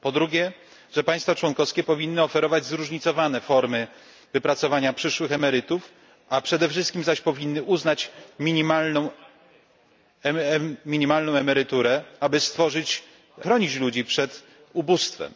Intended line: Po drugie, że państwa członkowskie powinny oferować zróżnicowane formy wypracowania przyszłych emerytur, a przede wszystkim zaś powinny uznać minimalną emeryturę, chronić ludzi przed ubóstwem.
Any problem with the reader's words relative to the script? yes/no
no